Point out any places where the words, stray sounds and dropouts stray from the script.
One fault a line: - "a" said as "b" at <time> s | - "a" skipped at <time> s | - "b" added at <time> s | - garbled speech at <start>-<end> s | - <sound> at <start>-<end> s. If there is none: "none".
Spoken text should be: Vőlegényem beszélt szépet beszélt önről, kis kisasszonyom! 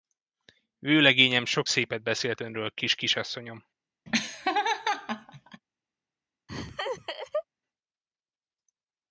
- "beszélt" said as "sok" at 1.4 s
- laugh at 4.1-5.6 s
- laugh at 6.5-7.4 s